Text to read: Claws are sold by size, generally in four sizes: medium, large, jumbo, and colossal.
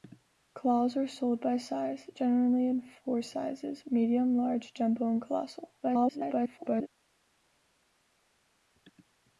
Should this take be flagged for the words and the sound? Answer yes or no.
yes